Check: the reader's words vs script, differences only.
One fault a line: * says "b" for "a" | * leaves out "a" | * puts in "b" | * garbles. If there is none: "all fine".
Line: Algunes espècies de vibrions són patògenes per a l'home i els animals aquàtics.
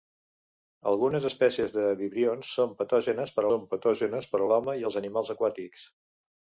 * puts in "són patògenes per"